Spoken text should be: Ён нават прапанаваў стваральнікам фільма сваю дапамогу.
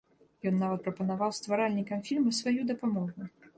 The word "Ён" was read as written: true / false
true